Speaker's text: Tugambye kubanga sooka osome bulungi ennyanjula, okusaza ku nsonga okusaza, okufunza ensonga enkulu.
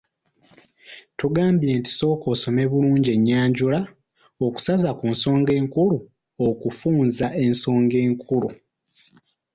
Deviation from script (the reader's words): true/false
true